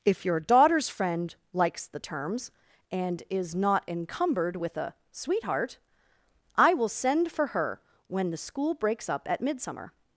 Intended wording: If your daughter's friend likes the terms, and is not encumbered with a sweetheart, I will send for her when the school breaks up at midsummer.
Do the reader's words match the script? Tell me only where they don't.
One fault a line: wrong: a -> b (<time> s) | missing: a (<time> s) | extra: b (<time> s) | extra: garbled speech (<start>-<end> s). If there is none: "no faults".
no faults